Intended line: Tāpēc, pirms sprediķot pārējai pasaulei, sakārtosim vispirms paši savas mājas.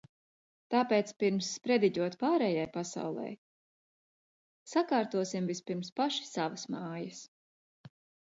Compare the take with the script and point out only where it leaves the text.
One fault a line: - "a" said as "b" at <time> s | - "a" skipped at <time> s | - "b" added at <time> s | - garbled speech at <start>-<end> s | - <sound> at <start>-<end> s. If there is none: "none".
none